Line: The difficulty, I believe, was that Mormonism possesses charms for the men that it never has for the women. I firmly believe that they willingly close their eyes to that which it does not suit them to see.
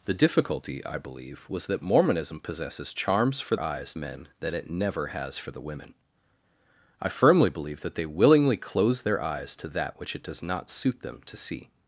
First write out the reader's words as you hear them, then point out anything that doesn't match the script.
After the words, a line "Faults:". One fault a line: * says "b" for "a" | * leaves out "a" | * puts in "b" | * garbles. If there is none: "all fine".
The difficulty, I believe, was that Mormonism possesses charms for eyes men that it never has for the women. I firmly believe that they willingly close their eyes to that which it does not suit them to see.
Faults:
* says "eyes" for "the"